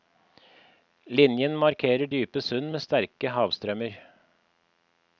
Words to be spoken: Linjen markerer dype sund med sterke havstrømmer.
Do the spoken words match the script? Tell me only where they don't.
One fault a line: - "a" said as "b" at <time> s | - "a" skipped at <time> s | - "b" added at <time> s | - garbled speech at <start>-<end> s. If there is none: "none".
none